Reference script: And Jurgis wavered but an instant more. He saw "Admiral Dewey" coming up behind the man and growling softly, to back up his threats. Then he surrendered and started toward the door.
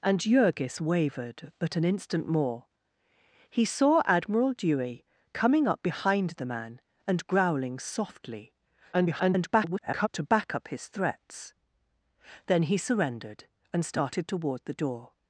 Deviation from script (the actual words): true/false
true